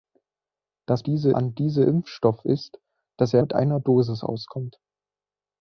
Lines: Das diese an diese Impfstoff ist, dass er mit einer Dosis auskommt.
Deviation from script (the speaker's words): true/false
false